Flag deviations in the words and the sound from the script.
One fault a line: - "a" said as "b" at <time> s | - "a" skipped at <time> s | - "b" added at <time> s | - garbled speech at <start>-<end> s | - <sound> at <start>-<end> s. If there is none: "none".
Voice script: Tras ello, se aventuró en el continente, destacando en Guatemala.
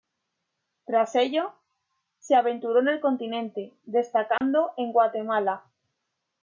- dropout at 4.4-4.4 s